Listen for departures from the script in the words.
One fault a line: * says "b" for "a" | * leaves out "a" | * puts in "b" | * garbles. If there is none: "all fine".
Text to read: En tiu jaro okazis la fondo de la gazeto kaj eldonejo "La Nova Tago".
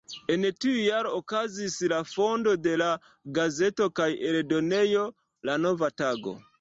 all fine